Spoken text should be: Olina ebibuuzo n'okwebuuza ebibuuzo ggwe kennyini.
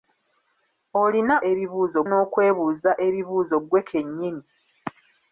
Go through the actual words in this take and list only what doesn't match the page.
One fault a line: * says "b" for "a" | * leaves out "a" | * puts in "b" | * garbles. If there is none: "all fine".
all fine